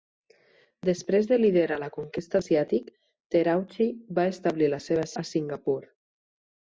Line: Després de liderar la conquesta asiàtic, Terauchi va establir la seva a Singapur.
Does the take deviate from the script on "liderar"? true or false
false